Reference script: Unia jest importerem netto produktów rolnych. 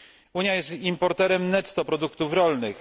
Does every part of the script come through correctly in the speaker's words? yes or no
yes